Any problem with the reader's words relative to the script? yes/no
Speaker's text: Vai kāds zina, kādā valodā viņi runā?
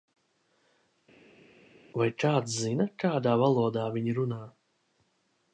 no